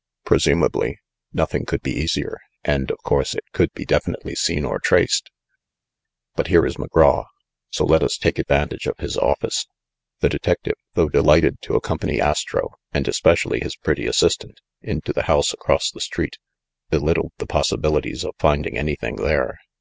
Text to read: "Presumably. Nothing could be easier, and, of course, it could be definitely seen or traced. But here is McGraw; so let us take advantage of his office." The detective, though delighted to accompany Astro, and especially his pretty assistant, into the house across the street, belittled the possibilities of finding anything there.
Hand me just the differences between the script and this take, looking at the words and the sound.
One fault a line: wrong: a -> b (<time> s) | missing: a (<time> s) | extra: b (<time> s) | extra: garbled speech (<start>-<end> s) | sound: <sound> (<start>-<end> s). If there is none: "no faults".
no faults